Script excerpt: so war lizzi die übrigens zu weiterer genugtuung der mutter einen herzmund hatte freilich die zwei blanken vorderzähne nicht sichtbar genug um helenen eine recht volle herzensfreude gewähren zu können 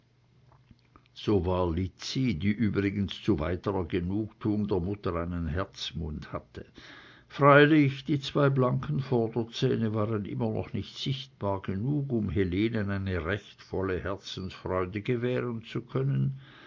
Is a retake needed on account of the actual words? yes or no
yes